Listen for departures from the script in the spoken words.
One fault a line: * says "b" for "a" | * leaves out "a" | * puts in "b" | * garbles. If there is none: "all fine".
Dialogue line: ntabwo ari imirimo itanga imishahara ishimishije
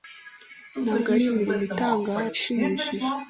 * leaves out "imishahara"